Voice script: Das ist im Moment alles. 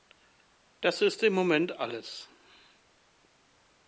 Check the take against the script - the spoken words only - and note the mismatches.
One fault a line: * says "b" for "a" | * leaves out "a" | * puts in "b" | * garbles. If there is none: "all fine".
all fine